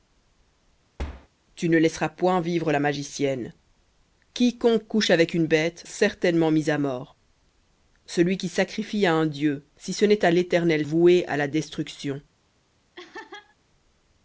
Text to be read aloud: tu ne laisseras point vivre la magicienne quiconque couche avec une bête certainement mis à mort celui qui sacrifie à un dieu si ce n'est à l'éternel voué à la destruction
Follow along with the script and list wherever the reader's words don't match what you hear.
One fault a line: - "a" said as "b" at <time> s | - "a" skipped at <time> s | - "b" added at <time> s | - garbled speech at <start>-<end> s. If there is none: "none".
none